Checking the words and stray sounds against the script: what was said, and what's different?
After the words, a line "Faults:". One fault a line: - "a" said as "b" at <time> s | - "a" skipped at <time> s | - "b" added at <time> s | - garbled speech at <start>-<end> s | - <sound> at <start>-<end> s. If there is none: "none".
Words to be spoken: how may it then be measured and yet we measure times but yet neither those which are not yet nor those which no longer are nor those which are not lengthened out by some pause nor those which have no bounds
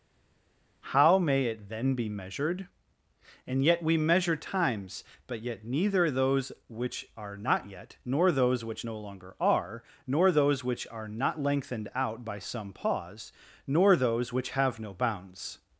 how may it then be measured and yet we measure times but yet neither those which are not yet nor those which no longer are nor those which are not lengthened out by some pause nor those which have no bounds
Faults:
none